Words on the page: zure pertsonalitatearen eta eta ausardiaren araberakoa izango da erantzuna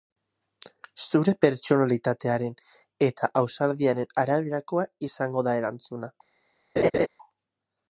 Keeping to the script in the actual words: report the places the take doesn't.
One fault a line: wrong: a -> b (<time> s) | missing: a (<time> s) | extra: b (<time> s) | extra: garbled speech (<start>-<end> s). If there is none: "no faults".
missing: eta (3.3 s)